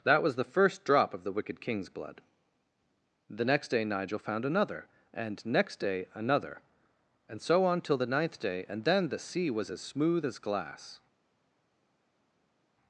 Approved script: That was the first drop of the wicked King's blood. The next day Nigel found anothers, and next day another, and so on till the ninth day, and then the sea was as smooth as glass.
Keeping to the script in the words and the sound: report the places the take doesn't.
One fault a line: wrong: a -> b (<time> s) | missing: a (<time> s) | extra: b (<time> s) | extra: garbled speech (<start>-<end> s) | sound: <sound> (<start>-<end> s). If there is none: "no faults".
wrong: anothers -> another (4.5 s)